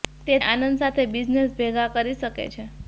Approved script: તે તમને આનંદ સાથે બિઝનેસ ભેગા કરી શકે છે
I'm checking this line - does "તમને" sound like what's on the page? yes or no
no